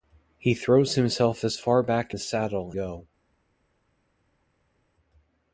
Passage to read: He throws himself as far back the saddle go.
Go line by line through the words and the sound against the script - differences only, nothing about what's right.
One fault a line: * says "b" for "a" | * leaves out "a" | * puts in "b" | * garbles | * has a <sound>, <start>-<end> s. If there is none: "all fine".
all fine